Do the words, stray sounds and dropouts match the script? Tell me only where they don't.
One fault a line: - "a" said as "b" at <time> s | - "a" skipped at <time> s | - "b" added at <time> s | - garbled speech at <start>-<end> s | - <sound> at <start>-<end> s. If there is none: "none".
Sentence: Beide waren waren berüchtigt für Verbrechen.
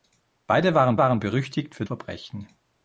none